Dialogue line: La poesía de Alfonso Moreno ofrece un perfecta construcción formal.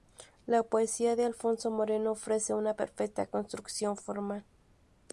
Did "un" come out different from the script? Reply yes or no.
yes